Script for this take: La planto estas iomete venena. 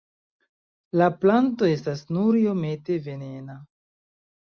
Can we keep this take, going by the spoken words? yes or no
no